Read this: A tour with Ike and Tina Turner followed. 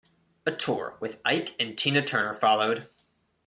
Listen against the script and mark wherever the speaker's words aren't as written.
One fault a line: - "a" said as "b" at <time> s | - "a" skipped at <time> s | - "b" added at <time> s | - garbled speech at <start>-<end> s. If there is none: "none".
none